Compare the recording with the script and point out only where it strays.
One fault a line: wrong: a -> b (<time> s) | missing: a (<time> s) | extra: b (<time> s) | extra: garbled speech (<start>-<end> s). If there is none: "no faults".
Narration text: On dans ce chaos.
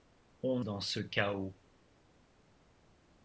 no faults